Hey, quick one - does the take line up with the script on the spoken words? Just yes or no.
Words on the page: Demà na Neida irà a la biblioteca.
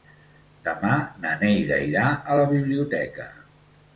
yes